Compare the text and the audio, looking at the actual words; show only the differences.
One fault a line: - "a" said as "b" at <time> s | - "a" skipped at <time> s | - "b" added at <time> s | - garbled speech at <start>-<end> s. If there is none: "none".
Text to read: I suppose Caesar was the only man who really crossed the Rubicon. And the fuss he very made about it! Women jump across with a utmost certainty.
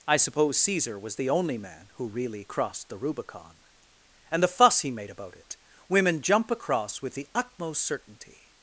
- "very" skipped at 4.9 s
- "a" said as "the" at 7.1 s